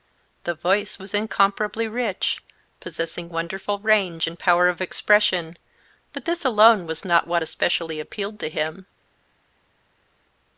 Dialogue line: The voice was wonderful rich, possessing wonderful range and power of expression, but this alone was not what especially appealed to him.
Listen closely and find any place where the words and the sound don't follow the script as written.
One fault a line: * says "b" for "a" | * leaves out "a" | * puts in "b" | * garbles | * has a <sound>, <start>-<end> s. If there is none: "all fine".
* says "incomparably" for "wonderful"